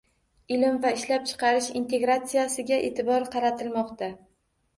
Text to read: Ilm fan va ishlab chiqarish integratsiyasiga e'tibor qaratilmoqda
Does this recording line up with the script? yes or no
no